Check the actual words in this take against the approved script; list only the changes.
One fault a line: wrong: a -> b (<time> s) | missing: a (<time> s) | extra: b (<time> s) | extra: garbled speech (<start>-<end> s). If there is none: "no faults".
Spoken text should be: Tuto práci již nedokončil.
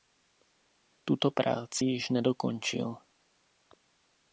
no faults